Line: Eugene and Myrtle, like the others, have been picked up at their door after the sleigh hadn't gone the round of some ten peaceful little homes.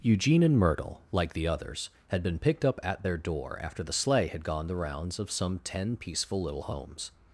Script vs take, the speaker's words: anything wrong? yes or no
yes